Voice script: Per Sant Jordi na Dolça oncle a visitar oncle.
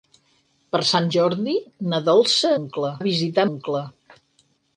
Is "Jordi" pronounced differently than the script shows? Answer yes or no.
no